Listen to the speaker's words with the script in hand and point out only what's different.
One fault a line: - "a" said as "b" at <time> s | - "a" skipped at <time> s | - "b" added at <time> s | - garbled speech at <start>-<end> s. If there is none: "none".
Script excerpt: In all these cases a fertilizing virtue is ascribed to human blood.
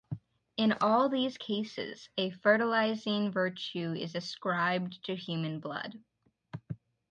none